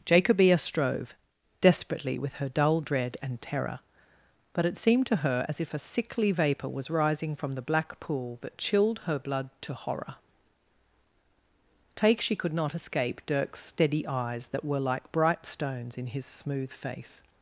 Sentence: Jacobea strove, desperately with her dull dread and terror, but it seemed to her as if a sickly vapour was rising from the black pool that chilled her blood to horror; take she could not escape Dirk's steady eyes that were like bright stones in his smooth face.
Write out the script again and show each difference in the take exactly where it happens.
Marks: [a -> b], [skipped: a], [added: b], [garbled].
Jacobea strove, desperately with her dull dread and terror, but it seemed to her as if a sickly vapour was rising from the black pool that chilled her blood to horror; take she could not escape Dirk's steady eyes that were like bright stones in his smooth face.